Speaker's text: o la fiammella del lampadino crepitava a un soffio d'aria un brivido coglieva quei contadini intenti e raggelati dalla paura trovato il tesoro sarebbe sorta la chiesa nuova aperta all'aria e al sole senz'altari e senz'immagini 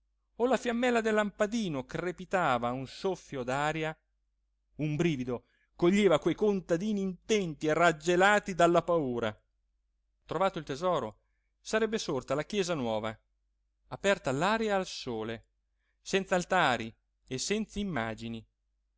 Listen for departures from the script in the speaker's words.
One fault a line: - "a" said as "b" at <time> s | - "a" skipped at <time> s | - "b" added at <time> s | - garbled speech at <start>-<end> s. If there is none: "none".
none